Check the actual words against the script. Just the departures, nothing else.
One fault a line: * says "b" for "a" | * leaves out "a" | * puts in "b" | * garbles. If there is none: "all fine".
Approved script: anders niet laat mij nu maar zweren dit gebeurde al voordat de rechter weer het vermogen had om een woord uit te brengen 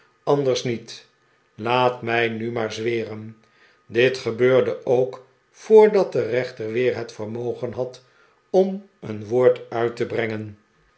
* says "ook" for "al"